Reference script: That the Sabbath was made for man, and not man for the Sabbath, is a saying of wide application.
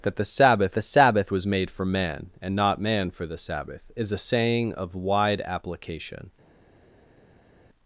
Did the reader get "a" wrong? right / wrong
right